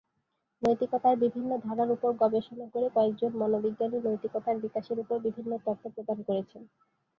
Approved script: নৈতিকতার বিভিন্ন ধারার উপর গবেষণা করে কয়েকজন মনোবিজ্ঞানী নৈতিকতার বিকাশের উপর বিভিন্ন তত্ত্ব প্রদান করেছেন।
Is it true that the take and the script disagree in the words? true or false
false